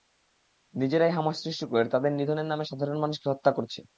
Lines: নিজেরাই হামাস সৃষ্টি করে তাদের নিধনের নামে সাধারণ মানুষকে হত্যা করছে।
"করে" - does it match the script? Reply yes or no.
yes